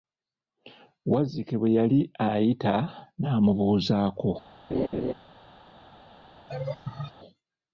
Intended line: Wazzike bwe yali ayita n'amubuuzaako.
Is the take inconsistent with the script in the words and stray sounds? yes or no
yes